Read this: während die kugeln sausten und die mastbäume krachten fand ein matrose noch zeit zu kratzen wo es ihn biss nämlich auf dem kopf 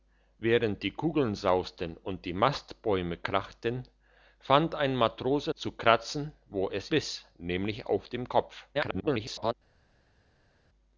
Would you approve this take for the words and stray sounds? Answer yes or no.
no